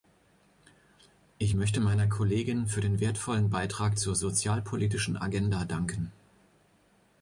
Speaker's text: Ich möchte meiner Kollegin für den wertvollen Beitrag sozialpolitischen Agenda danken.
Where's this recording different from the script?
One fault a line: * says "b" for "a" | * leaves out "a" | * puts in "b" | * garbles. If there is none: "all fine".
* puts in "zur"